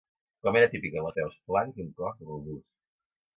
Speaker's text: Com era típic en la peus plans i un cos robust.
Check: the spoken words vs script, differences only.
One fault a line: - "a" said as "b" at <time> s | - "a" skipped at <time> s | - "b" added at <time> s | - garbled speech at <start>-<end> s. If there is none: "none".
none